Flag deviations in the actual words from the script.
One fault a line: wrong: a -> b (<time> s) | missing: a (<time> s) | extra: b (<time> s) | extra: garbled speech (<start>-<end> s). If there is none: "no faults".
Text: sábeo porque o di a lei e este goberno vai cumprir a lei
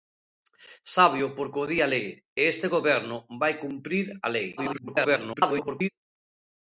extra: garbled speech (4.6-5.9 s)